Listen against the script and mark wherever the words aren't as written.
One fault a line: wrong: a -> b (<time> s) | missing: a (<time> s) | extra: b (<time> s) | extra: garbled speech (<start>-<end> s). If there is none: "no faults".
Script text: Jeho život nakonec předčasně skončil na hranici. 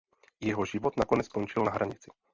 missing: předčasně (1.3 s)